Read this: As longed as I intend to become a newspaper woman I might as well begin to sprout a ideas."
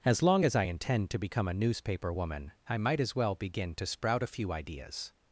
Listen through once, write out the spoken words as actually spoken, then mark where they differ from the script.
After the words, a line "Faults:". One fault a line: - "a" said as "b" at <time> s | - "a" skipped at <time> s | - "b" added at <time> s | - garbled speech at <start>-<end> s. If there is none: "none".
As long as I intend to become a newspaper woman I might as well begin to sprout a few ideas."
Faults:
- "longed" said as "long" at 0.2 s
- "few" added at 4.3 s